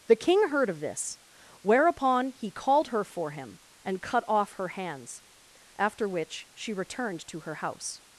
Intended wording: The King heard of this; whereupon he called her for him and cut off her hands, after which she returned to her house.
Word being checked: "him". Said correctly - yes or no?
yes